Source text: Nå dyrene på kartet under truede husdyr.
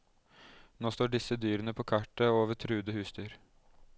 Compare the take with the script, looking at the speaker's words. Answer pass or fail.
fail